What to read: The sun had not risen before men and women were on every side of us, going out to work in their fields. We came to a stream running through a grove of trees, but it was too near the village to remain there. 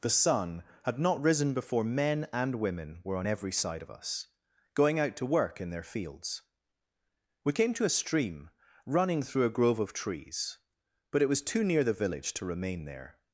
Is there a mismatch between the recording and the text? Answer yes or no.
no